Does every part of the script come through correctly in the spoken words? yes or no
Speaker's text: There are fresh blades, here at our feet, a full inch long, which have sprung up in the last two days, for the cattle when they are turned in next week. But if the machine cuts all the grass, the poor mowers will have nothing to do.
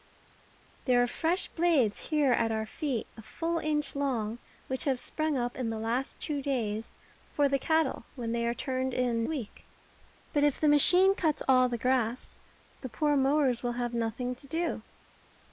no